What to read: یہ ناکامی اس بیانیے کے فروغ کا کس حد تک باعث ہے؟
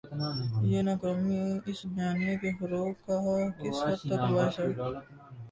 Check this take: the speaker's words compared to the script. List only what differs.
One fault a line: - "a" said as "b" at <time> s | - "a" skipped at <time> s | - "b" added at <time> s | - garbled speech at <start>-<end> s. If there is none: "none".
none